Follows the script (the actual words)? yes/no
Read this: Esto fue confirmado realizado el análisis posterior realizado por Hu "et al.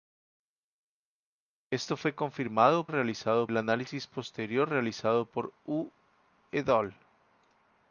yes